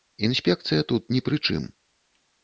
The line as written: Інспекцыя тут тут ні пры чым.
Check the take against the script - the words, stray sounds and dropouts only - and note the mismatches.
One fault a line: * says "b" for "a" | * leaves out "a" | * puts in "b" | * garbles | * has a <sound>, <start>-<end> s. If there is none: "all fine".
* leaves out "тут"